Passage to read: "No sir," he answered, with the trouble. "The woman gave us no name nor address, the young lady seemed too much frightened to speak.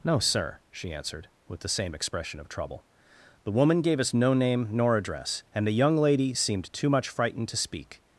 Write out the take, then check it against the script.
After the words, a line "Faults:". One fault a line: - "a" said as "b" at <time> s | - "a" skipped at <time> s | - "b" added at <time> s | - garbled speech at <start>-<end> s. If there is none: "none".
"No sir," she answered, with the same expression of trouble. "The woman gave us no name nor address, and the young lady seemed too much frightened to speak.
Faults:
- "he" said as "she" at 0.7 s
- "same expression of" added at 1.7 s
- "and" added at 5.5 s